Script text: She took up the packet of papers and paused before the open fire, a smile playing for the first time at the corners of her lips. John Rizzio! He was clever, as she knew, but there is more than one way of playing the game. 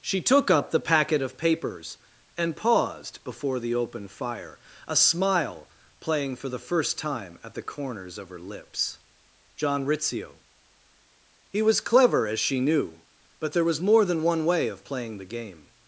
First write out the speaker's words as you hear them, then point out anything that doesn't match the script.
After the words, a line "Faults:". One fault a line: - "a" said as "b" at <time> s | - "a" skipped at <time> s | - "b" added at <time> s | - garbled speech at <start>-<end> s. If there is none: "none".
She took up the packet of papers and paused before the open fire, a smile playing for the first time at the corners of her lips. John Rizzio! He was clever, as she knew, but there was more than one way of playing the game.
Faults:
- "is" said as "was" at 13.7 s